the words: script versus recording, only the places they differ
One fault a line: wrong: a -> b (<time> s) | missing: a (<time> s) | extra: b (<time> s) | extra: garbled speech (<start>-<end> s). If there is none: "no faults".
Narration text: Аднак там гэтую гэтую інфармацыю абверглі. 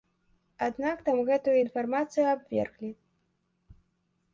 missing: гэтую (1.6 s)